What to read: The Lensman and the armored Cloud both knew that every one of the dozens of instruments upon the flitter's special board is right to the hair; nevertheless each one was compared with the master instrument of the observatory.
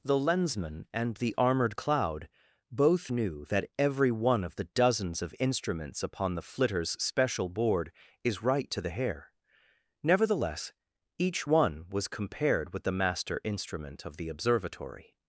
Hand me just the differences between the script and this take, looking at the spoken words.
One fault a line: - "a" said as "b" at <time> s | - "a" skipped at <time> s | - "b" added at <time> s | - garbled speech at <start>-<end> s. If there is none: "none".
none